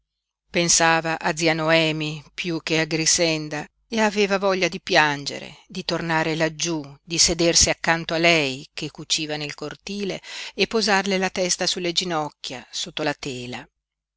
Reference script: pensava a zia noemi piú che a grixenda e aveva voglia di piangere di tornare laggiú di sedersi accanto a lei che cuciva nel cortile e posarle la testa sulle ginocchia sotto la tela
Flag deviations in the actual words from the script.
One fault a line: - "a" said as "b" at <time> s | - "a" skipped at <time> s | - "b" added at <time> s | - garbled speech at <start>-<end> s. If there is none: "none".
none